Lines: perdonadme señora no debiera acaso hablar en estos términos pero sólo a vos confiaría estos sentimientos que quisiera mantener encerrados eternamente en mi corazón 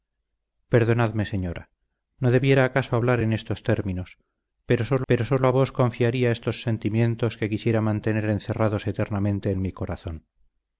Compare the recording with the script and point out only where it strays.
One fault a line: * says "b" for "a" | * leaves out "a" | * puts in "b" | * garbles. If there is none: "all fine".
* puts in "pero sólo"